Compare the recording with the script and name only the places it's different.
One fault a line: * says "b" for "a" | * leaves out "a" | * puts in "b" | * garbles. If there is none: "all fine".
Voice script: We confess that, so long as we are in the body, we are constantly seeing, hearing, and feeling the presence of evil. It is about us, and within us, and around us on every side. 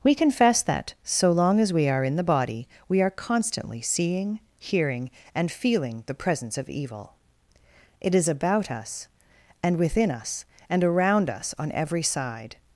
all fine